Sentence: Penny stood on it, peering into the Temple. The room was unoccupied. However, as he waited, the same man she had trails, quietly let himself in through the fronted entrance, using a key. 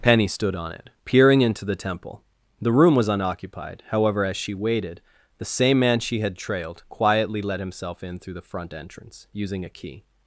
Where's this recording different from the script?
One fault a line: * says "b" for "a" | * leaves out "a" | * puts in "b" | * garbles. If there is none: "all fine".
* says "she" for "he"
* says "trailed" for "trails"
* says "front" for "fronted"